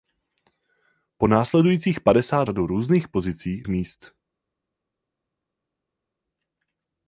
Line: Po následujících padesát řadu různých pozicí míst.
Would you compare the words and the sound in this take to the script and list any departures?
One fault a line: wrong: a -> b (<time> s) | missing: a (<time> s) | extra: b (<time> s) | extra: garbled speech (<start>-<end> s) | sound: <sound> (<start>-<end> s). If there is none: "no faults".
no faults